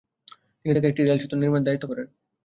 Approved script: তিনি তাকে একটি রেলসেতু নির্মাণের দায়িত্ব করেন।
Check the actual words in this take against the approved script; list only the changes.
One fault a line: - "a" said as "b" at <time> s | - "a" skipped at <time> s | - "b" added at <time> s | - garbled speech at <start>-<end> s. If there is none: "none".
none